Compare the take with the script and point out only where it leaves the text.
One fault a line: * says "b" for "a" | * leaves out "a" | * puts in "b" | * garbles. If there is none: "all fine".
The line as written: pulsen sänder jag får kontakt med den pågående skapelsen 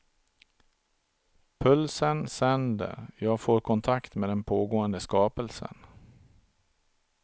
all fine